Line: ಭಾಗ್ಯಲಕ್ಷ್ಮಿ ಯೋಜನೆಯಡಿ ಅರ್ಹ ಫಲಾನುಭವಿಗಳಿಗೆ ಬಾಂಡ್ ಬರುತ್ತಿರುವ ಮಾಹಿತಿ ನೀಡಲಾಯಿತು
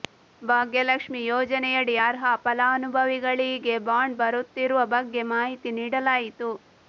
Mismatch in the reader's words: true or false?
true